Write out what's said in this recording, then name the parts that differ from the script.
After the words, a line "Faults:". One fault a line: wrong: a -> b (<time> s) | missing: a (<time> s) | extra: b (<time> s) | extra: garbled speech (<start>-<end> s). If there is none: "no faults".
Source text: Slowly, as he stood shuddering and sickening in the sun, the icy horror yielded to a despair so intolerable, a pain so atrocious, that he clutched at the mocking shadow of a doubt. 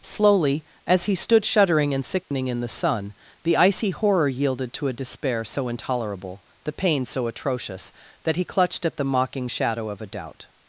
Slowly, as he stood shuddering and sickening in the sun, the icy horror yielded to a despair so intolerable, the pain so atrocious, that he clutched at the mocking shadow of a doubt.
Faults:
wrong: a -> the (6.6 s)